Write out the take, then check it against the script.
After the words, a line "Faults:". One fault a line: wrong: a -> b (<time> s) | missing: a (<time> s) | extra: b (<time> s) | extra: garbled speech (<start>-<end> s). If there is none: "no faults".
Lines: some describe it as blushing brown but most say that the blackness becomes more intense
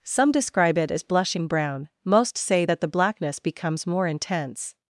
some describe it as blushing brown most say that the blackness becomes more intense
Faults:
missing: but (1.9 s)